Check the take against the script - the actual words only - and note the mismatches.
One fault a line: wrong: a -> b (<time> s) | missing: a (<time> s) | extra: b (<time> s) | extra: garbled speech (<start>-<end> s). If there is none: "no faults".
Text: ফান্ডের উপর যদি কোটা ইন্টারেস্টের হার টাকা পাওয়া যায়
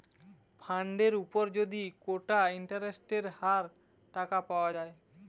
no faults